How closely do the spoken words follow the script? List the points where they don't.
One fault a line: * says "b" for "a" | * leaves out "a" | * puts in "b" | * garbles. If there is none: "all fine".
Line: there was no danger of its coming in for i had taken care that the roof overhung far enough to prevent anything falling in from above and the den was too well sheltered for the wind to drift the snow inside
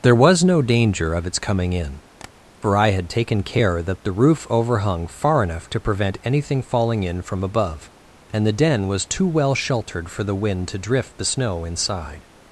all fine